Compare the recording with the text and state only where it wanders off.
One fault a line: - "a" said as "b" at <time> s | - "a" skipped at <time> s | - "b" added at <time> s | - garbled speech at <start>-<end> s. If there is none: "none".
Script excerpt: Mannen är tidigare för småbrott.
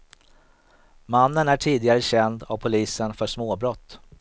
- "känd av polisen" added at 2.0 s